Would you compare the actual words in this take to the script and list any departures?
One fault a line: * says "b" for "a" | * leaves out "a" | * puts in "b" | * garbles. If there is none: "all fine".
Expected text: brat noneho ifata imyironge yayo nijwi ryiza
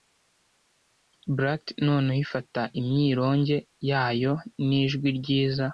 all fine